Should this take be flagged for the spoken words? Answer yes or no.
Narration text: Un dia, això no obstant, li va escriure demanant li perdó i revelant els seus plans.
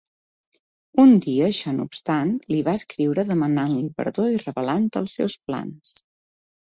no